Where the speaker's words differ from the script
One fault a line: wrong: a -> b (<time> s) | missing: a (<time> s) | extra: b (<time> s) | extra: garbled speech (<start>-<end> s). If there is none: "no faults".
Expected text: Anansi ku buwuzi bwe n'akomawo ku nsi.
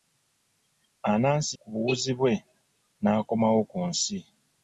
no faults